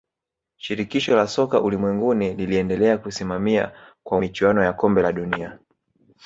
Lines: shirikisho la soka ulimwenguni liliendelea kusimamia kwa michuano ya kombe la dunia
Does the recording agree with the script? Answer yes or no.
yes